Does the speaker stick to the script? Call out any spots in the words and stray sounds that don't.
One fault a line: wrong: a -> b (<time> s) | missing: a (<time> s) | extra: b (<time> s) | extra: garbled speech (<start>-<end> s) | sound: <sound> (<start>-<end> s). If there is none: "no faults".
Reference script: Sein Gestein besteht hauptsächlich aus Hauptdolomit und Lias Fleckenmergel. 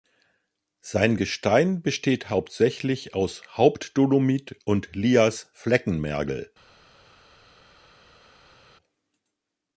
no faults